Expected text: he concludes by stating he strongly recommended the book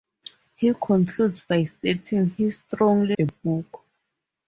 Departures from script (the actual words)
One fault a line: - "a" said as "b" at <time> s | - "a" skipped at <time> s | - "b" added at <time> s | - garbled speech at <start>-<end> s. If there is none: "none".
- "recommended" skipped at 3.2 s